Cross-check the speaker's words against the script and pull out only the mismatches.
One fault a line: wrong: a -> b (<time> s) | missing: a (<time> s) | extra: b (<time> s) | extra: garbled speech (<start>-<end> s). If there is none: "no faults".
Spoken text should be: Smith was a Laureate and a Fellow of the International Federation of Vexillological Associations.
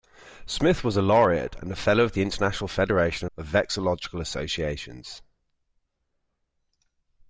missing: of (3.3 s)